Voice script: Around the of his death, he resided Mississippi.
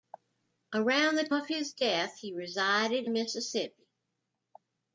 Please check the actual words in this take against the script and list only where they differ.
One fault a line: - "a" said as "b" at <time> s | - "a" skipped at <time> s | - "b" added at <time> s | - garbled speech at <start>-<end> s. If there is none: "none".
none